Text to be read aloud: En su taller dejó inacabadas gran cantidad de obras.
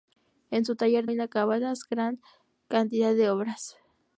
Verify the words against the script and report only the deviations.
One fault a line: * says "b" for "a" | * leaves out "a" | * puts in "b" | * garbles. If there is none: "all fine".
* leaves out "dejó"